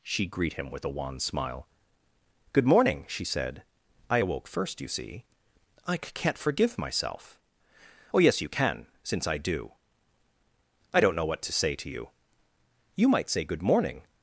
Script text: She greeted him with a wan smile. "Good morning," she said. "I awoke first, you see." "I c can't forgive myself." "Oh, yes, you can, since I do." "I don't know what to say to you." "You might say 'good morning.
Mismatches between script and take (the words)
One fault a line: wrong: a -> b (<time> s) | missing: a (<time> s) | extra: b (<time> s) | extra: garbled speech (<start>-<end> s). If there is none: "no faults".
wrong: greeted -> greet (0.2 s)